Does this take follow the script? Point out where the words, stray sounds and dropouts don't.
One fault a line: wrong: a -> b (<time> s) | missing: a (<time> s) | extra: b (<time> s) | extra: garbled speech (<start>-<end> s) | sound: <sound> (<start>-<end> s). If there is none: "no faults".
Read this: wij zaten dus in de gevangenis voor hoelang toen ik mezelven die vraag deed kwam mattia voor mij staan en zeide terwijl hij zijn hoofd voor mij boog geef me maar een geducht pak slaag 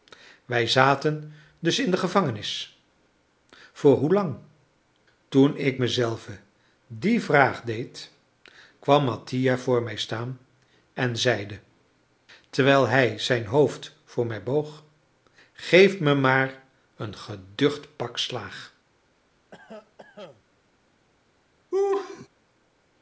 sound: cough (19.5-20.4 s)
sound: laugh (21.7-22.3 s)